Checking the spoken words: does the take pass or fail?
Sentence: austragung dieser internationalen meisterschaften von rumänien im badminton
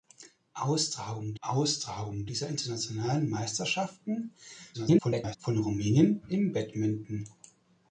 fail